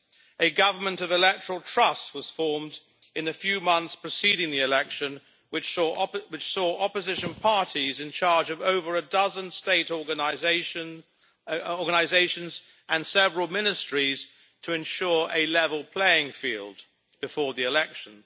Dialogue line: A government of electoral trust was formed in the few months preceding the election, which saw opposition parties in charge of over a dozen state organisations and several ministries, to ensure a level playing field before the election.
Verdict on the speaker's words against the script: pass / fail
pass